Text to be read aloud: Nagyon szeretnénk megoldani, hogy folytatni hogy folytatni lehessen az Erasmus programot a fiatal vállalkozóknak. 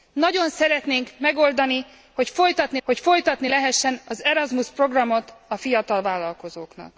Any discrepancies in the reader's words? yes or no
no